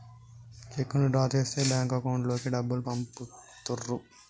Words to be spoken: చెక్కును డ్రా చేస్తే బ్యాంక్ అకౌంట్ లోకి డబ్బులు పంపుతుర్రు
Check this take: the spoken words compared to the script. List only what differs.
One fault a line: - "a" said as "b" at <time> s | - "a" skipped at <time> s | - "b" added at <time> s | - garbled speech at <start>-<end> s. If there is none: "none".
none